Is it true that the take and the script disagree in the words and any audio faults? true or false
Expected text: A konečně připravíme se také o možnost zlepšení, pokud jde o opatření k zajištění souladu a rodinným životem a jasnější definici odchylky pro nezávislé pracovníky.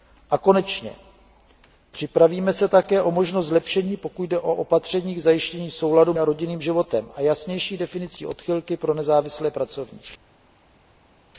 false